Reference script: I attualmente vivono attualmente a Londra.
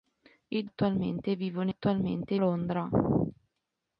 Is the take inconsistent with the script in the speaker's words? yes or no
no